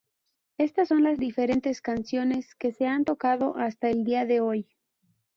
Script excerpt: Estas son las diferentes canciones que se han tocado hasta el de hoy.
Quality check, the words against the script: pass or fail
fail